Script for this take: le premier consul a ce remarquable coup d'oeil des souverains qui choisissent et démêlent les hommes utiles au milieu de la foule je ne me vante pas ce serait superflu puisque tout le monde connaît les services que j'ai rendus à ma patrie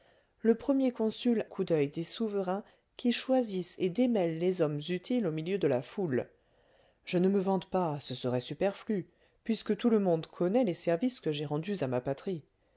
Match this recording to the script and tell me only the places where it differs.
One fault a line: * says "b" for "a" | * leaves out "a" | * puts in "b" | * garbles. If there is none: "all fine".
* leaves out "a ce remarquable"